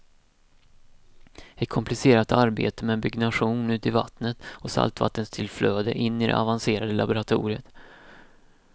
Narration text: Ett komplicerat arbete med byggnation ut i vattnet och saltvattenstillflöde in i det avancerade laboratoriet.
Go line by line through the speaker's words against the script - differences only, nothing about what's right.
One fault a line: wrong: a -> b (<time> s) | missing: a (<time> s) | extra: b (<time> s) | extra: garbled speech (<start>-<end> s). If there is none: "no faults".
no faults